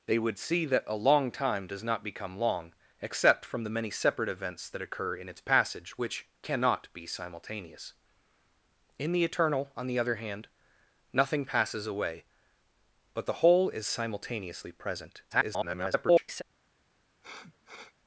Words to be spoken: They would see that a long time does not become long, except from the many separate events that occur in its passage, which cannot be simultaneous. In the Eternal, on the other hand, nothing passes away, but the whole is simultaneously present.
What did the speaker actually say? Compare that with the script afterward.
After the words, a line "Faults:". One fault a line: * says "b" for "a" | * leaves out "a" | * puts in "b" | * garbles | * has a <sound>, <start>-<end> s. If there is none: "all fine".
They would see that a long time does not become long, except from the many separate events that occur in its passage, which cannot be simultaneous. In the Eternal, on the other hand, nothing passes away, but the whole is simultaneously present. [garbled]
Faults:
* garbles
* has a sniff, 17.2-17.9 s